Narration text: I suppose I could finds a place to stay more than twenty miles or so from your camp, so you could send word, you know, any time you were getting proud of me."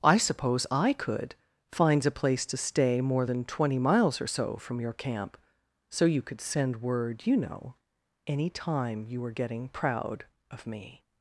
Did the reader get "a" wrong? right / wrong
right